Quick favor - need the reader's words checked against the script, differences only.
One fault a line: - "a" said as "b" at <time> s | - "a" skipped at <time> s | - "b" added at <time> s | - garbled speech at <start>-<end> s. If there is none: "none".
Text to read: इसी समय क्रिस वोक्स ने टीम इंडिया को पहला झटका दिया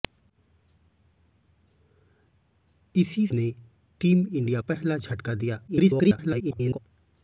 - "समय क्रिस वोक्स" skipped at 3.3 s
- "को" skipped at 4.6 s
- garbled speech at 5.7-6.8 s